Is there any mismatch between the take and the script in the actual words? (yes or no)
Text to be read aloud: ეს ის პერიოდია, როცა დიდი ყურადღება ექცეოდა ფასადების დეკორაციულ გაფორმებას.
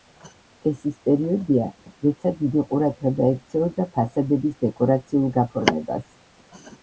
no